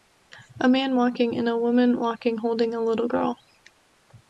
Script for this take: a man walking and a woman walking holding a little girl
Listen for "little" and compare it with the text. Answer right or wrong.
right